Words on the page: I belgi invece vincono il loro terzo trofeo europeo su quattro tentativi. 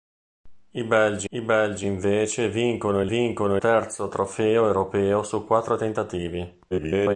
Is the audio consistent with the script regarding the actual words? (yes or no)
no